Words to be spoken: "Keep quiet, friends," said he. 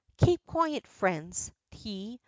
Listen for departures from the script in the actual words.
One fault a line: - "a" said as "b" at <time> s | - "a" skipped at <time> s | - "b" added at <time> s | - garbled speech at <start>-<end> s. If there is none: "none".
- "said" skipped at 1.5 s